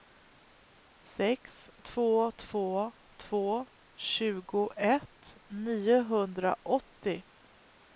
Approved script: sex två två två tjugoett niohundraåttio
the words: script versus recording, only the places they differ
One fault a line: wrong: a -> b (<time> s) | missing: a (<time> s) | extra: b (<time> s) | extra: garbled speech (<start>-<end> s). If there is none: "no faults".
no faults